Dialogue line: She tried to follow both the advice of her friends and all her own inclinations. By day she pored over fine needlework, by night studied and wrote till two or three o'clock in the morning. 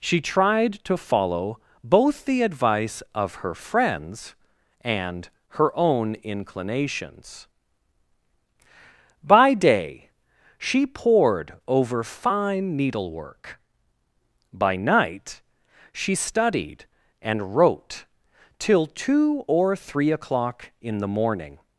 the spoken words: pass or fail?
fail